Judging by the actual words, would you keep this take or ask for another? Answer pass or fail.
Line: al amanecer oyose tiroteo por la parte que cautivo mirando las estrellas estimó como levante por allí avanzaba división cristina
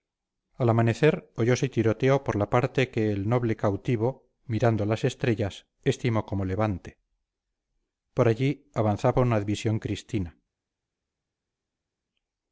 fail